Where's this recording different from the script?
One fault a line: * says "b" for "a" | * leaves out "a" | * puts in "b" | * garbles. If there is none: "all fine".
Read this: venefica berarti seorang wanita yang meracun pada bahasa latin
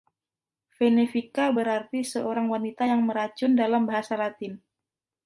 * says "dalam" for "pada"